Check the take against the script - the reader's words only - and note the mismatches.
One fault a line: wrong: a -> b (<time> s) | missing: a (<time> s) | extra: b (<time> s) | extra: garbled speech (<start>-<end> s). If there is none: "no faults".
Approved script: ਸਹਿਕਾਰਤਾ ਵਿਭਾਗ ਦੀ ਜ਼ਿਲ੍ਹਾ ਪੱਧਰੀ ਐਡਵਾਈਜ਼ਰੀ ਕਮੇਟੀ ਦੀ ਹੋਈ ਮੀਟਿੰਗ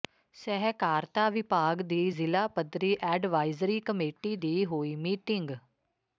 no faults